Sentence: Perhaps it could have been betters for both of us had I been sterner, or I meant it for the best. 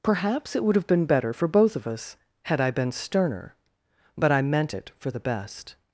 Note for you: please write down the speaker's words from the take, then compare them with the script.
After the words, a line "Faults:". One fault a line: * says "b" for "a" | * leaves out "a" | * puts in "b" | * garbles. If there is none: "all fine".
Perhaps it would have been better for both of us had I been sterner, but I meant it for the best.
Faults:
* says "would" for "could"
* says "better" for "betters"
* says "but" for "or"